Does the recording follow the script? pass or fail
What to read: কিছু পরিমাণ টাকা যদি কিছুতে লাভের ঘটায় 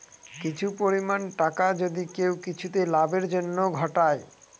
fail